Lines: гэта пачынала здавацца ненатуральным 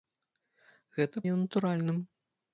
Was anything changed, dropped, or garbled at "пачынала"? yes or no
yes